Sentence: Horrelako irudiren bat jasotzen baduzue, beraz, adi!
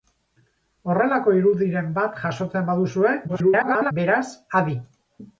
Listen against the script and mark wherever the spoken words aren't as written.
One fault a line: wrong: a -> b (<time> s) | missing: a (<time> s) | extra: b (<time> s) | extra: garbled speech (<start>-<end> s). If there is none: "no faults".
extra: garbled speech (3.3-3.9 s)